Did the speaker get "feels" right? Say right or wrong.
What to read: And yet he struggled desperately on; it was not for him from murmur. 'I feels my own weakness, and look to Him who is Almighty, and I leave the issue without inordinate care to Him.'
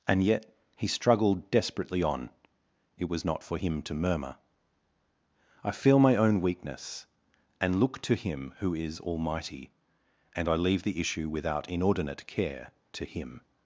wrong